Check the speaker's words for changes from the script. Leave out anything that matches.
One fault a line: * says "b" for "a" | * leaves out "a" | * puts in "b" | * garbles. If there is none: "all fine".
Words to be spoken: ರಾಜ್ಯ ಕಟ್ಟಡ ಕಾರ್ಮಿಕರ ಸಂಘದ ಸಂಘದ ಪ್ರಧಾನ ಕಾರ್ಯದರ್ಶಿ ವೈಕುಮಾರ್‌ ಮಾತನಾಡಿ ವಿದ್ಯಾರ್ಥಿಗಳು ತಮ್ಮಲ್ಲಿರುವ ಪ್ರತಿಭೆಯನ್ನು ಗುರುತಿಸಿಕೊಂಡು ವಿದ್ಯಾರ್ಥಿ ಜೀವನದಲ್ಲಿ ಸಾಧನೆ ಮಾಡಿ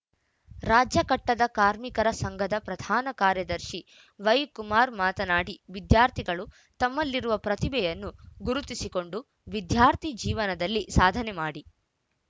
* leaves out "ಸಂಘದ"